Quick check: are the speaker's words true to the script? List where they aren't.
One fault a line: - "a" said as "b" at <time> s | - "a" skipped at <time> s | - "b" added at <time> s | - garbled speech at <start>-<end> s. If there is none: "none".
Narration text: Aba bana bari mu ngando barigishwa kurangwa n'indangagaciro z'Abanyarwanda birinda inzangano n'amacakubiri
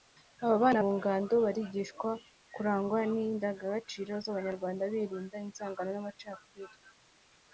- "bari" skipped at 0.8 s